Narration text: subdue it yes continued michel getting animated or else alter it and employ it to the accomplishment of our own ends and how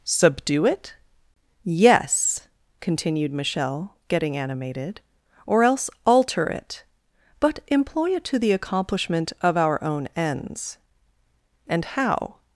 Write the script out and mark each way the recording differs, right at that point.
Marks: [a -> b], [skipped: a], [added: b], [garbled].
subdue it yes continued michel getting animated or else alter it [and -> but] employ it to the accomplishment of our own ends and how